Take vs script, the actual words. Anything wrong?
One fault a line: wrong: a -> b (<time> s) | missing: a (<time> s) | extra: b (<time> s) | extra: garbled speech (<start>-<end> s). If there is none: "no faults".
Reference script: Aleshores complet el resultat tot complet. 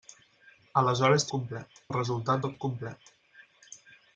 no faults